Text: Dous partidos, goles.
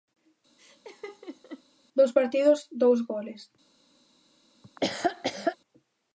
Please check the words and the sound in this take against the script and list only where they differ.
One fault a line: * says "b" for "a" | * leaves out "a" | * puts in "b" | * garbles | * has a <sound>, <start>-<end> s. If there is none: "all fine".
* has a laugh, 0.6-1.6 s
* puts in "dous"
* has a laugh, 4.6-5.6 s